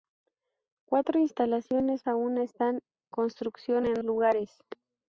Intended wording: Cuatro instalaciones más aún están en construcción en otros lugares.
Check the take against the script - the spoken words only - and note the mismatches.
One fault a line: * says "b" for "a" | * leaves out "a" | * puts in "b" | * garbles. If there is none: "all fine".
* leaves out "más"
* leaves out "en"
* leaves out "otros"